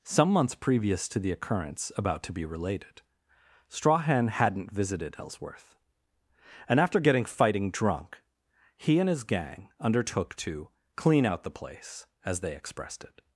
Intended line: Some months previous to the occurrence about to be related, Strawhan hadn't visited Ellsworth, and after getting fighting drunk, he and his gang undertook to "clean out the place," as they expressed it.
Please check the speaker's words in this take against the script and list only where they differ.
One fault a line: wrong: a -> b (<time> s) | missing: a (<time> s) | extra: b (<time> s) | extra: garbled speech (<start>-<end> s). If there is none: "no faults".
no faults